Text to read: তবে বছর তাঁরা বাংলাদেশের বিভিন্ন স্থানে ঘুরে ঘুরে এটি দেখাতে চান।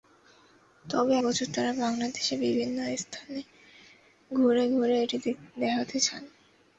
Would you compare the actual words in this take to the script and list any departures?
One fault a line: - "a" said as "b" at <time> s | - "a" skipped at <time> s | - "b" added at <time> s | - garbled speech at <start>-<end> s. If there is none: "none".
none